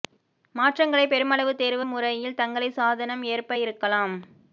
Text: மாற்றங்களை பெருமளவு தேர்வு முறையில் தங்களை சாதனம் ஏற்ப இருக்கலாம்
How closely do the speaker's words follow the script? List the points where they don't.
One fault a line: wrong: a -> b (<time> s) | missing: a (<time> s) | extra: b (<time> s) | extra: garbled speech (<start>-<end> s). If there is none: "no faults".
no faults